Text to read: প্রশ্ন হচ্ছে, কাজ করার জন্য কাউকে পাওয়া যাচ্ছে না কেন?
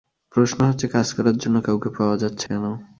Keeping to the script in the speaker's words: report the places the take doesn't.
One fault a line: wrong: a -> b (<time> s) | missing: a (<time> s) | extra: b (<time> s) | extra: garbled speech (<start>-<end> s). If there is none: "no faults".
missing: না (2.5 s)